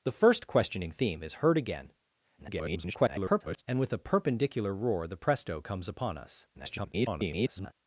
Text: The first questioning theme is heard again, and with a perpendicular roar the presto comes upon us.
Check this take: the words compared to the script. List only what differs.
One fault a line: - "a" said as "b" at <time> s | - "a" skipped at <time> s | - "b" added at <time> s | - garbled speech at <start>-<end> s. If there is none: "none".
- garbled speech at 2.4-3.6 s
- garbled speech at 6.5-7.7 s